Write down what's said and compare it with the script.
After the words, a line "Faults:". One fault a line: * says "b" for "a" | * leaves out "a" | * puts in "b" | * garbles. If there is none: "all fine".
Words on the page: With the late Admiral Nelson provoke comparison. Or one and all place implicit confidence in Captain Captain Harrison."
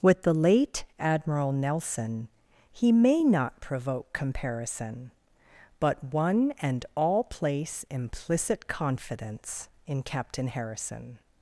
With the late Admiral Nelson he may not provoke comparison. But one and all place implicit confidence in Captain Harrison."
Faults:
* puts in "he may not"
* says "But" for "Or"
* leaves out "Captain"